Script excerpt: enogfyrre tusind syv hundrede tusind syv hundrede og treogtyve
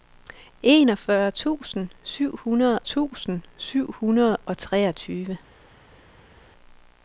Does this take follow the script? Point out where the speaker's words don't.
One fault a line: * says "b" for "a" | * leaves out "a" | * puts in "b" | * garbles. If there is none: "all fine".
all fine